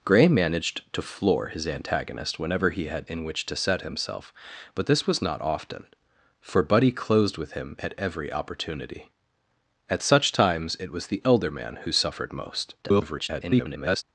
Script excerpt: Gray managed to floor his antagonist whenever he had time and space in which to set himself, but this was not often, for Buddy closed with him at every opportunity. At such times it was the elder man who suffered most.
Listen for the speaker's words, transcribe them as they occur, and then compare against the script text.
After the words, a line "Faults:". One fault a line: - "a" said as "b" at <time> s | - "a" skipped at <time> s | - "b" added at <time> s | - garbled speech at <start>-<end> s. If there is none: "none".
Gray managed to floor his antagonist whenever he had in which to set himself, but this was not often, for Buddy closed with him at every opportunity. At such times it was the elder man who suffered most. [garbled]
Faults:
- "time and space" skipped at 3.1 s
- garbled speech at 12.8-14.0 s